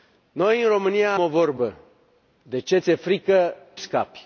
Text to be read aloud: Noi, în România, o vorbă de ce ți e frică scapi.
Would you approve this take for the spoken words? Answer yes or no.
yes